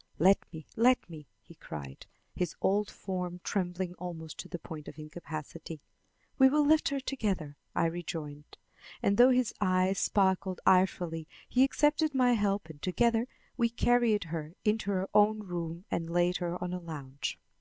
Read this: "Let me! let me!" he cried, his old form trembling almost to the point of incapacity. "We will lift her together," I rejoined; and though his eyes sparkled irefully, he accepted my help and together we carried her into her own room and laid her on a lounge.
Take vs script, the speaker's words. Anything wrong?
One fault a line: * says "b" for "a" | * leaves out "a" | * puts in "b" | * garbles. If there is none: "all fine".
all fine